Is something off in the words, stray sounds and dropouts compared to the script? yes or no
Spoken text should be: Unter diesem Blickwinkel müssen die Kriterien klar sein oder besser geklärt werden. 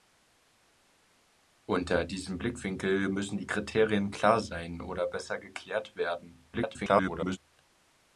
yes